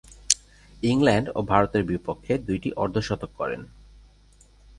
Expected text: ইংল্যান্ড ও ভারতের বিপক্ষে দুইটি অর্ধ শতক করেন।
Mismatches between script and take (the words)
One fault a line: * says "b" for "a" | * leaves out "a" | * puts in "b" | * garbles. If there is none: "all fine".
all fine